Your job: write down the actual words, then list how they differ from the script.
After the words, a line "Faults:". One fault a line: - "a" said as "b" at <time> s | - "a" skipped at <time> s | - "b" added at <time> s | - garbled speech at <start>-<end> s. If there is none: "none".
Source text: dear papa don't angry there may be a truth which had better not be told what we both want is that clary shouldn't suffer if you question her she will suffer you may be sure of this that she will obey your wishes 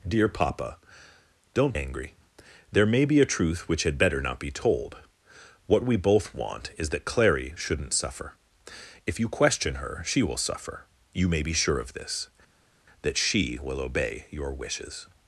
dear papa don't angry there may be a truth which had better not be told what we both want is that clary shouldn't suffer if you question her she will suffer you may be sure of this that she will obey your wishes
Faults:
none